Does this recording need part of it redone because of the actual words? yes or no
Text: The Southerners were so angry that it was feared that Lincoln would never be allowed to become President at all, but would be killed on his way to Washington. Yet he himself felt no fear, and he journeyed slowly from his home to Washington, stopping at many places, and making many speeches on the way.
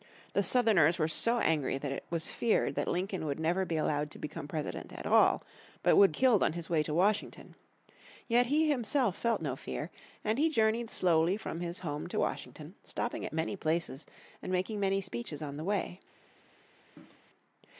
yes